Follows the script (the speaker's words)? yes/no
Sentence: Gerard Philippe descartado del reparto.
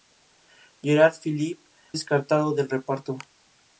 yes